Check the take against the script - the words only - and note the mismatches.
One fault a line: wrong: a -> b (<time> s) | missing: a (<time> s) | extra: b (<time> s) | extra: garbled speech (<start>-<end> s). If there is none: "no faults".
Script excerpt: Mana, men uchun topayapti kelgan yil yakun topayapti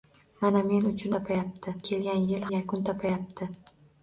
no faults